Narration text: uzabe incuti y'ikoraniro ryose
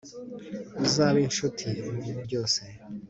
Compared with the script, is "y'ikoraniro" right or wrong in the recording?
wrong